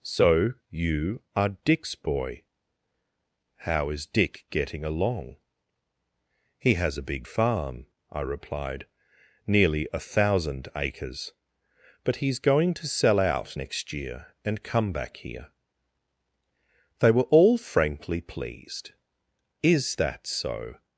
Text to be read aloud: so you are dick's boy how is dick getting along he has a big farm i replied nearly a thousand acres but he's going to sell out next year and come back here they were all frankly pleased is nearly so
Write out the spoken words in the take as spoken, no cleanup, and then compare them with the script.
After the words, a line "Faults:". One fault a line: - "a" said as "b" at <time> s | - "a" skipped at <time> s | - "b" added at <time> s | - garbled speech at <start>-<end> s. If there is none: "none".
so you are dick's boy how is dick getting along he has a big farm i replied nearly a thousand acres but he's going to sell out next year and come back here they were all frankly pleased is that so
Faults:
- "nearly" said as "that" at 20.0 s